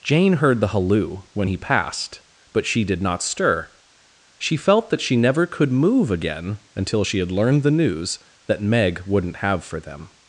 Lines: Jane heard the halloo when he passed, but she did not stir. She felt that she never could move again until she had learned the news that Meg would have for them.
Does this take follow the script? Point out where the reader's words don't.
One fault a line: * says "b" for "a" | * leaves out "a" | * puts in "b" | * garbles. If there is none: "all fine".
* says "wouldn't" for "would"